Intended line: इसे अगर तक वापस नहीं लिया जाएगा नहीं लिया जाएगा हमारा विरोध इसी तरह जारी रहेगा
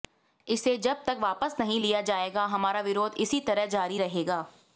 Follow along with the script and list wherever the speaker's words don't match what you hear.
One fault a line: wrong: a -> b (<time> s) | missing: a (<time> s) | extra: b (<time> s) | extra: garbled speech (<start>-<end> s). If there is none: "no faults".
wrong: अगर -> जब (0.8 s)
missing: नहीं लिया जाएगा (2.5 s)